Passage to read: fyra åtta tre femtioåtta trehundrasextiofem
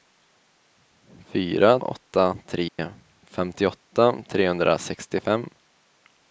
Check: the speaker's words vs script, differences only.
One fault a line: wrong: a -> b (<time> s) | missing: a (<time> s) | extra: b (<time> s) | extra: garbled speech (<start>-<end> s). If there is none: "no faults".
no faults